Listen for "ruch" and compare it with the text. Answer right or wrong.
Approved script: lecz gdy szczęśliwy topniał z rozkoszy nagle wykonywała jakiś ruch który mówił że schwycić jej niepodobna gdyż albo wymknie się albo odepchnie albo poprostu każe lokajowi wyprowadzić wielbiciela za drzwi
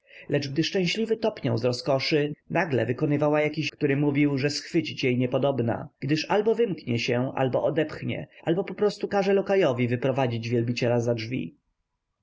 wrong